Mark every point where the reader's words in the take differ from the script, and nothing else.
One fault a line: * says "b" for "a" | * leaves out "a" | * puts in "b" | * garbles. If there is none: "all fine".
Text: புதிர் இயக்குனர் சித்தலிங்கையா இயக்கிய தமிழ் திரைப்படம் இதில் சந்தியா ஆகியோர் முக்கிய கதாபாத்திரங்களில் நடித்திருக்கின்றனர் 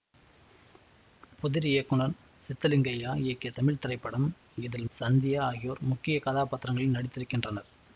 all fine